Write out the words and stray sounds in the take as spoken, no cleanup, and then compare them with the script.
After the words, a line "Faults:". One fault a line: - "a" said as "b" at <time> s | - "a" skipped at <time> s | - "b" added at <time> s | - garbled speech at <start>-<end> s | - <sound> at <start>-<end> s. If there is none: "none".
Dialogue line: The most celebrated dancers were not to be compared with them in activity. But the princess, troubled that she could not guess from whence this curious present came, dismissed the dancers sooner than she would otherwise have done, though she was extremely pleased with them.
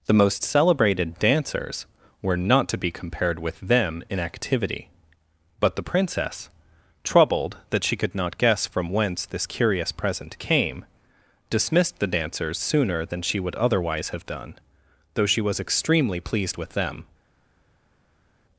The most celebrated dancers were not to be compared with them in activity. But the princess, troubled that she could not guess from whence this curious present came, dismissed the dancers sooner than she would otherwise have done, though she was extremely pleased with them.
Faults:
none